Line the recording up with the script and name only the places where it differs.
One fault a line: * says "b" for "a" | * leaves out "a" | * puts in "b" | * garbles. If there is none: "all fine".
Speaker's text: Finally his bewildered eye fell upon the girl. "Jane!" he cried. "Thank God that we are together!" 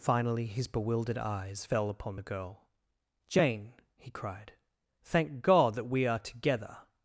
* says "eyes" for "eye"